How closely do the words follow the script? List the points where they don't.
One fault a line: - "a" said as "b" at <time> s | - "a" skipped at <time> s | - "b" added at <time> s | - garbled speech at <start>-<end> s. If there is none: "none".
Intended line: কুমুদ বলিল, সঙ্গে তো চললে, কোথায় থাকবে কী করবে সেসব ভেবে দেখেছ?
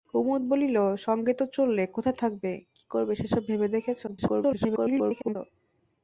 - garbled speech at 4.1-5.4 s